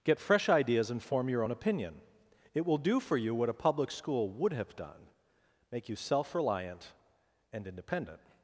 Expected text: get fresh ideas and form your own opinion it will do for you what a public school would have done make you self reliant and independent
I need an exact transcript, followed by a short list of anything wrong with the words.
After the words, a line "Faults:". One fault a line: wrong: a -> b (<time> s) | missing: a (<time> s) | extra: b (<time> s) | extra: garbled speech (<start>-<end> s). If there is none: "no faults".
get fresh ideas and form your own opinion it will do for you what a public school would have done make you self reliant and independent
Faults:
no faults